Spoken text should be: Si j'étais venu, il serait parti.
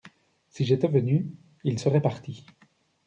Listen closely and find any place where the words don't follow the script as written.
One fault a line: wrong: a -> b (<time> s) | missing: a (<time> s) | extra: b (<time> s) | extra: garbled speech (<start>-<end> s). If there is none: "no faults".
no faults